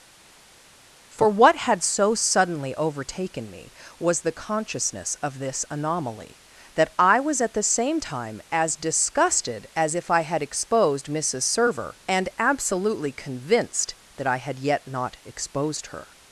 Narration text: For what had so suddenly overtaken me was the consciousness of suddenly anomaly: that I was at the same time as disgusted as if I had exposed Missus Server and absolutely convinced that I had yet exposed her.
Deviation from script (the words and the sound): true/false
true